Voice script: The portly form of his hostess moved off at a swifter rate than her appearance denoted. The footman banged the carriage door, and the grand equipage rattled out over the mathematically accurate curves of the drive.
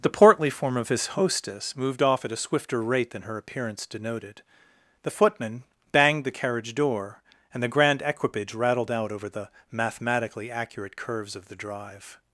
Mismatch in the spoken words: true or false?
false